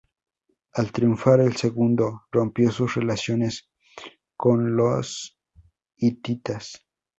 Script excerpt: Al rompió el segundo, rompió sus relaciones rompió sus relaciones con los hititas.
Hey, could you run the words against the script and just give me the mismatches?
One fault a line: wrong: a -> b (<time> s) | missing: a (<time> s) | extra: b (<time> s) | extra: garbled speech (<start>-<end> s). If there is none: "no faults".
wrong: rompió -> triunfar (0.9 s)
missing: rompió sus relaciones (3.6 s)